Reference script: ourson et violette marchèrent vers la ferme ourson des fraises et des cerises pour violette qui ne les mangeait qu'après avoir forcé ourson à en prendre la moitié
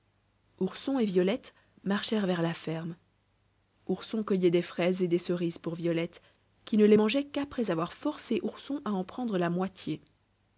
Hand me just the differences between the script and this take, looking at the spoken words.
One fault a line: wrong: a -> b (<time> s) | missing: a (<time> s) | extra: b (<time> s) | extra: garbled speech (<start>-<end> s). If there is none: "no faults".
extra: cueillait (4.2 s)